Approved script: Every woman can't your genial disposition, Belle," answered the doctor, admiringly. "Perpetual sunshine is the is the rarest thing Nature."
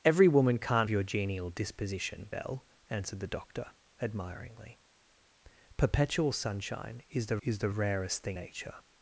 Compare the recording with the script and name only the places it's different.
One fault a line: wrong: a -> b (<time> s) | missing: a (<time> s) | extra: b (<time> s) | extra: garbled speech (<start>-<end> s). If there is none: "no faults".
no faults